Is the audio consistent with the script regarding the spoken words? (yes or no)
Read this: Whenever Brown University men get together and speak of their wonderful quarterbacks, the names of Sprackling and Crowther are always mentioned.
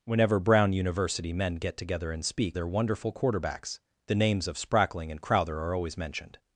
no